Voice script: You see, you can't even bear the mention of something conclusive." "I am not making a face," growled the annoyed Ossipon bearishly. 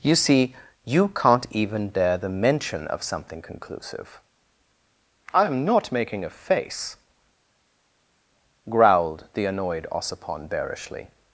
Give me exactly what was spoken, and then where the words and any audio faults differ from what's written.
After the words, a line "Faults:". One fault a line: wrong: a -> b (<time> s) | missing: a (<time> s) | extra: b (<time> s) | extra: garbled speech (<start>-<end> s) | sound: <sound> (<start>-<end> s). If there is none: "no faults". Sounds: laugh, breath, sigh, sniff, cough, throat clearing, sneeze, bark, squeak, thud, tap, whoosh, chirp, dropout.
You see, you can't even dare the mention of something conclusive." "I am not making a face," growled the annoyed Ossipon bearishly.
Faults:
wrong: bear -> dare (1.9 s)